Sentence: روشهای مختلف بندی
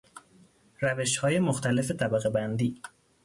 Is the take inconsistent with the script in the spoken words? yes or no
yes